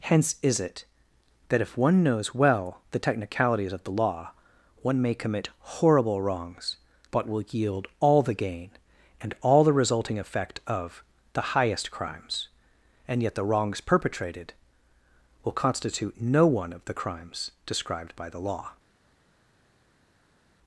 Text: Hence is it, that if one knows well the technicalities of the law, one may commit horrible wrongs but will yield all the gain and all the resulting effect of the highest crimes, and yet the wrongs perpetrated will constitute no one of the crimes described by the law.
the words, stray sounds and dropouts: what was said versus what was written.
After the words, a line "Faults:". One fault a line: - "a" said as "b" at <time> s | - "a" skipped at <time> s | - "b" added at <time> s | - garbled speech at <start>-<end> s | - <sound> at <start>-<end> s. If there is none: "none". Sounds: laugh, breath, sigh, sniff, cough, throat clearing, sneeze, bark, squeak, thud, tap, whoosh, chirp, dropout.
Hence is it, that if one knows well the technicalities of the law, one may commit horrible wrongs but will yield all the gain and all the resulting effect of the highest crimes, and yet the wrongs perpetrated will constitute no one of the crimes described by the law.
Faults:
none